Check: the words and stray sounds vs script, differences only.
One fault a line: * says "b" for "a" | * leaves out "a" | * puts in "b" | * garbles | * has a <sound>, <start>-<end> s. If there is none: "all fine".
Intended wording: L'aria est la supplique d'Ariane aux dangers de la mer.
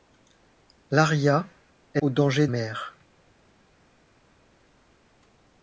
* leaves out "la supplique d'Ariane"
* leaves out "de la"